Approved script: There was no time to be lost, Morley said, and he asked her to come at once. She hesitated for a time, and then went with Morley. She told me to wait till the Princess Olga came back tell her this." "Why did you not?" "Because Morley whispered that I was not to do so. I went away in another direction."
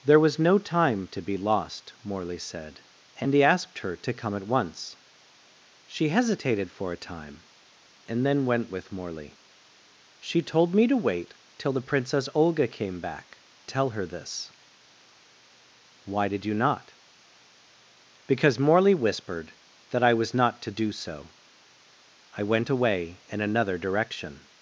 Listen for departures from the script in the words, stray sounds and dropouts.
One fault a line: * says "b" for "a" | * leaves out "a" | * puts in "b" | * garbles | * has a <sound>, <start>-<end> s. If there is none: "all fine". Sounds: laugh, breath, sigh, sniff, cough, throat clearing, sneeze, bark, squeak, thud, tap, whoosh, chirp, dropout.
all fine